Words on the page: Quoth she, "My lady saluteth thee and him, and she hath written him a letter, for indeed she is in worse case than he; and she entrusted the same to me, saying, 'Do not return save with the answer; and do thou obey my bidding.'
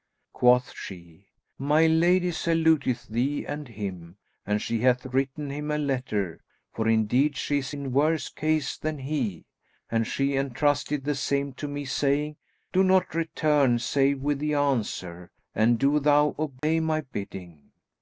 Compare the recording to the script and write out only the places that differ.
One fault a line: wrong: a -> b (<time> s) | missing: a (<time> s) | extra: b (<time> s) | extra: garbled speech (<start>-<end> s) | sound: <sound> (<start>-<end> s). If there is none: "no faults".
sound: dropout (16.6-16.6 s)